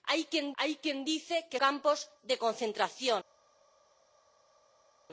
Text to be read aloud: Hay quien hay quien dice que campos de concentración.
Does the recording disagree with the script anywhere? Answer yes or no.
no